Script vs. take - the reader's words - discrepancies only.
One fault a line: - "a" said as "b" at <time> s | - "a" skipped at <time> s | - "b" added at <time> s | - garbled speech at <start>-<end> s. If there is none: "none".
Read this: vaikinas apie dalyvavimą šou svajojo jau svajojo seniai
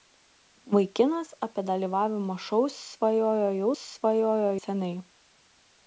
none